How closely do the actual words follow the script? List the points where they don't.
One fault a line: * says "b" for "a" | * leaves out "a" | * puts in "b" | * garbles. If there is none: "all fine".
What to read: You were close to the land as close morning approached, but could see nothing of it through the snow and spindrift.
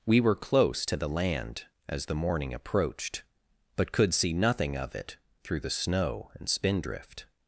* says "We" for "You"
* says "the" for "close"